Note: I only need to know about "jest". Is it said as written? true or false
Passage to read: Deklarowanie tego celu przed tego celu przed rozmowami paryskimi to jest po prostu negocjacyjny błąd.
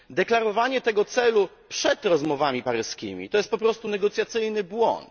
true